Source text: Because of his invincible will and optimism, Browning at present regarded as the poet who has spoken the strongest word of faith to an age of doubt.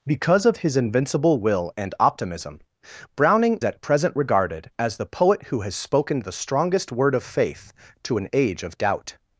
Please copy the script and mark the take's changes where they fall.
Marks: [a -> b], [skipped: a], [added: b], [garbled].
Because of his invincible will and optimism, Browning at present regarded as the poet who has spoken the strongest word of faith to an age of doubt.